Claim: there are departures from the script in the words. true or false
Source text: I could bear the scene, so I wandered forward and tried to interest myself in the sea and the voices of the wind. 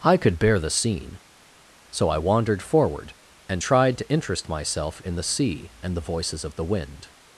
false